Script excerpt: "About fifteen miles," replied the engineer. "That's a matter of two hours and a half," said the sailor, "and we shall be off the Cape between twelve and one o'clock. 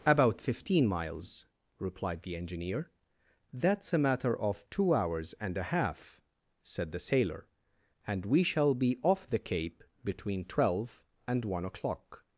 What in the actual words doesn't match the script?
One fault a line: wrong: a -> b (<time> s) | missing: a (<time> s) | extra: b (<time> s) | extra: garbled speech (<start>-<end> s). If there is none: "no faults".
no faults